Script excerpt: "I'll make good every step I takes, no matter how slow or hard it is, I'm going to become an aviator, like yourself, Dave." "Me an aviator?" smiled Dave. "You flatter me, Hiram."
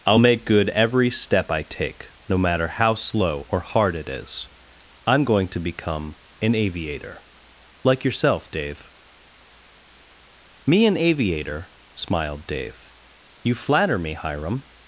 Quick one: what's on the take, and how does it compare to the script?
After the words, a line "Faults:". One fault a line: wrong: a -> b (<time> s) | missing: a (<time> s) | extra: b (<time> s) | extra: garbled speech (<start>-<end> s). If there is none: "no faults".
"I'll make good every step I take, no matter how slow or hard it is, I'm going to become an aviator, like yourself, Dave." "Me an aviator?" smiled Dave. "You flatter me, Hiram."
Faults:
wrong: takes -> take (1.6 s)